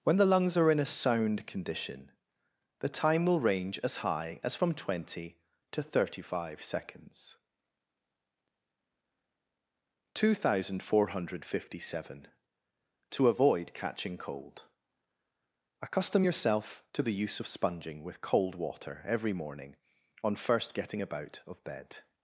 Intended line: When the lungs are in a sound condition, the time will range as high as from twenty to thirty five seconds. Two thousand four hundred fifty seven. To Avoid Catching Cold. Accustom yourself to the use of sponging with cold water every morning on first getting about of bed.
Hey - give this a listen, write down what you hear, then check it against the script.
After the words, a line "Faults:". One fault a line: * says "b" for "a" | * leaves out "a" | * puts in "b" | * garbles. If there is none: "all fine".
When the lungs are in a sound condition, the time will range as high as from twenty to thirty five seconds. Two thousand four hundred fifty seven. To Avoid Catching Cold. Accustom yourself to the use of sponging with cold water every morning on first getting about of bed.
Faults:
all fine